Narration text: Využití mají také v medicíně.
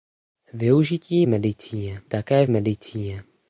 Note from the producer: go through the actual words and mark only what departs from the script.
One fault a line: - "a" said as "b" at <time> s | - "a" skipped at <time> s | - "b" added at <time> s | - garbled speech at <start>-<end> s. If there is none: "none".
- "mají" said as "medicíně" at 1.3 s